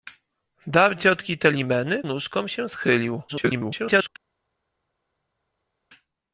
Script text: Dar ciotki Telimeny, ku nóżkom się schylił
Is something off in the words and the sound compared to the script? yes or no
yes